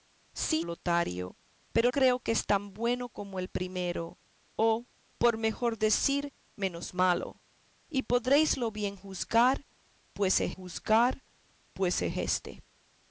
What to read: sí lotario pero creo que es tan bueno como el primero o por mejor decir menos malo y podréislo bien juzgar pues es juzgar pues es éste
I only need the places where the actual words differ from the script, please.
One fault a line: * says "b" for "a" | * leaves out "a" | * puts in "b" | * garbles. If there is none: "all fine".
all fine